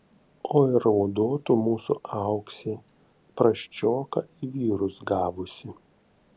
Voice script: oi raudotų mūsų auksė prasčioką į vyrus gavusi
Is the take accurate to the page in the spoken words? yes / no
yes